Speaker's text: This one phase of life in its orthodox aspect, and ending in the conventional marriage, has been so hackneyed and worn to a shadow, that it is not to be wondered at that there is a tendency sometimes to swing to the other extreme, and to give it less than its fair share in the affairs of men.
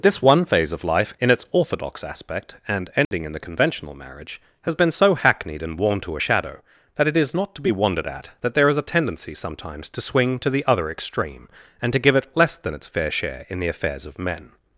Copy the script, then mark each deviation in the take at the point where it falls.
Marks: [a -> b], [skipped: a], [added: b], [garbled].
This one phase of life in its orthodox aspect, and ending in the conventional marriage, has been so hackneyed and worn to a shadow, that it is not to be wondered at that there is a tendency sometimes to swing to the other extreme, and to give it less than its fair share in the affairs of men.